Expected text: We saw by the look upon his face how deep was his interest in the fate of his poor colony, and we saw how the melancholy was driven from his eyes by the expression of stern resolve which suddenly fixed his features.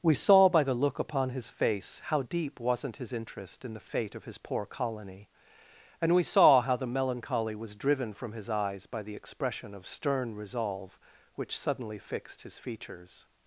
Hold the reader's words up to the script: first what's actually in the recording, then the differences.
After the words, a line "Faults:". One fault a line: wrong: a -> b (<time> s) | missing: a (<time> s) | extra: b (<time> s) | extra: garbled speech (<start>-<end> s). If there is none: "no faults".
We saw by the look upon his face how deep wasn't his interest in the fate of his poor colony, and we saw how the melancholy was driven from his eyes by the expression of stern resolve which suddenly fixed his features.
Faults:
wrong: was -> wasn't (2.6 s)